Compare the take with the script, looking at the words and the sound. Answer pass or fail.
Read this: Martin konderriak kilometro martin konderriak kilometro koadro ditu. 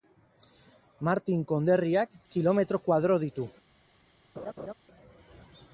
fail